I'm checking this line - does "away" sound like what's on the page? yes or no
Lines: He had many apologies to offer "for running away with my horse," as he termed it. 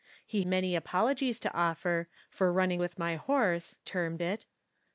no